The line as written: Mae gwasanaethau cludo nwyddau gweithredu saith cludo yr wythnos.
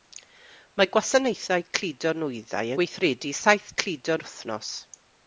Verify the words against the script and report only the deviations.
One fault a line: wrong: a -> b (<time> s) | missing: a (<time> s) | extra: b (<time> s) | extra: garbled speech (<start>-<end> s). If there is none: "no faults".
no faults